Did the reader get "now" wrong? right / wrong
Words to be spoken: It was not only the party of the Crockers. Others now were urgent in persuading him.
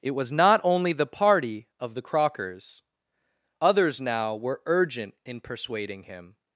right